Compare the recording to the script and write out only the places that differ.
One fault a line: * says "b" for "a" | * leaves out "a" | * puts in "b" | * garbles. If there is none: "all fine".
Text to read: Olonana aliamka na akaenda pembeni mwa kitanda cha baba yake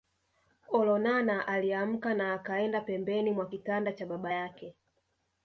all fine